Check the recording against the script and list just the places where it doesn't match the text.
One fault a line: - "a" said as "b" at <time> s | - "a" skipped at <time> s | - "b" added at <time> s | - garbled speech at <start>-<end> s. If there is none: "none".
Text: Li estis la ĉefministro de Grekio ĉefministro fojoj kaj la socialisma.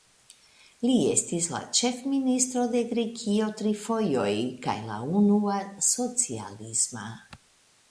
- "ĉefministro" said as "tri" at 3.6 s
- "unua" added at 5.2 s